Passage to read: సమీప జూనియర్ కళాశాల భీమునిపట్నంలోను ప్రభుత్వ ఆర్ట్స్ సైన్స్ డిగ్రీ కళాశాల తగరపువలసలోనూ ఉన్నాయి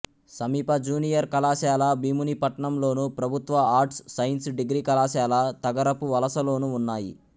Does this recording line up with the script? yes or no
yes